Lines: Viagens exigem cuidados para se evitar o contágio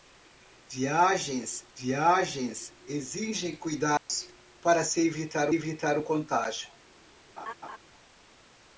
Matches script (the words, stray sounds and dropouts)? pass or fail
fail